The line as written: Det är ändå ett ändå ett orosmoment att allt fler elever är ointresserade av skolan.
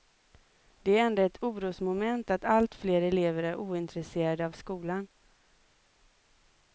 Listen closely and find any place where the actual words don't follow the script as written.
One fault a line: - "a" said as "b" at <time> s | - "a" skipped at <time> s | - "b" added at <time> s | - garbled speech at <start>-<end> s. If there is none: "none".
- "ändå ett" skipped at 1.4 s